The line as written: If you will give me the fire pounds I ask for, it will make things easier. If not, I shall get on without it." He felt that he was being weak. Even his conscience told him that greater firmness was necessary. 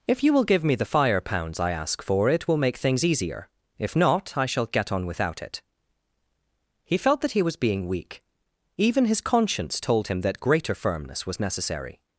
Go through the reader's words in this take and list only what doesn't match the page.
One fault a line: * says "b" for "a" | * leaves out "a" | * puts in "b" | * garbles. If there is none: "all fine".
all fine